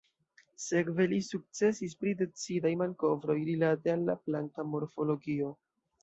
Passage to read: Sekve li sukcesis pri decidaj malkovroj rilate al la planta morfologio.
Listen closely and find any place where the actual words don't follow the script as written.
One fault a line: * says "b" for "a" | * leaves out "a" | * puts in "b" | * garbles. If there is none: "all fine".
all fine